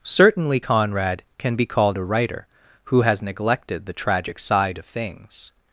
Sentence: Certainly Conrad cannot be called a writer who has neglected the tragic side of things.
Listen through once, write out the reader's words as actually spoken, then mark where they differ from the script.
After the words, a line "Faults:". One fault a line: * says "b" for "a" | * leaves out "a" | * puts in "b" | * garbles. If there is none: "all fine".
Certainly Conrad can be called a writer who has neglected the tragic side of things.
Faults:
* says "can" for "cannot"